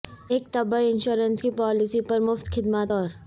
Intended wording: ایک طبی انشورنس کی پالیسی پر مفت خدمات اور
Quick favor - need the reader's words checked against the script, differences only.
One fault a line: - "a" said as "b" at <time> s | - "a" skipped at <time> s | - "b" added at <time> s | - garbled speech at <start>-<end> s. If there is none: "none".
none